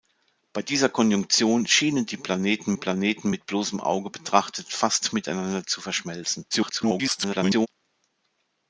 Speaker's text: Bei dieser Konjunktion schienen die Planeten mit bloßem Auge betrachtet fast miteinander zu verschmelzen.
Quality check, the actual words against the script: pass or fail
fail